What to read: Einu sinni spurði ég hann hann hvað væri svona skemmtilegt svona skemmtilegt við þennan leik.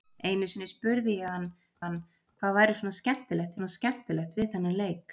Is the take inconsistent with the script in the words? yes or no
no